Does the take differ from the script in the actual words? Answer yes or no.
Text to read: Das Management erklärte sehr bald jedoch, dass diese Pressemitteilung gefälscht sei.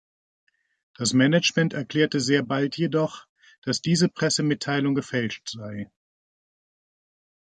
no